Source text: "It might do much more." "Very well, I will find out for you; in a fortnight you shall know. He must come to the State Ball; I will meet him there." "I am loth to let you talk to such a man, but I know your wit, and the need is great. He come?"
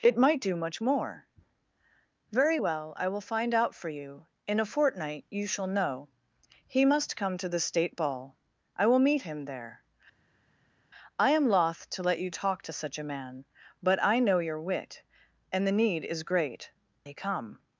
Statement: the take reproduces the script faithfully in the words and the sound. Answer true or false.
true